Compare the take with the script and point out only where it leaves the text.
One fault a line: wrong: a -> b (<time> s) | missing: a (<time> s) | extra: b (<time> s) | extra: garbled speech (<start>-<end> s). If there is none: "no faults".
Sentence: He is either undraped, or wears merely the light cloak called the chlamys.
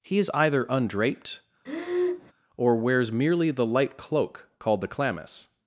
no faults